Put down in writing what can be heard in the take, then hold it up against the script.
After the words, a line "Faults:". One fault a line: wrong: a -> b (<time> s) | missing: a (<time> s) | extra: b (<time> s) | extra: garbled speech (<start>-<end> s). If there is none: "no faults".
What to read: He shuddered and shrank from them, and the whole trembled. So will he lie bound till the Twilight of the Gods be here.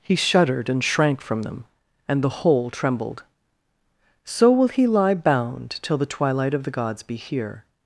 He shuddered and shrank from them, and the whole trembled. So will he lie bound till the Twilight of the Gods be here.
Faults:
no faults